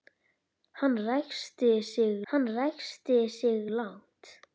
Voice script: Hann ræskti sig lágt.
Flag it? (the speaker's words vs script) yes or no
yes